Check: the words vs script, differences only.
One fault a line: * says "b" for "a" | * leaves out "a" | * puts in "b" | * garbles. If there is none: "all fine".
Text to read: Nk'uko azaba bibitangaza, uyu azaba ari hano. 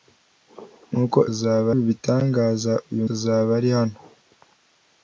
all fine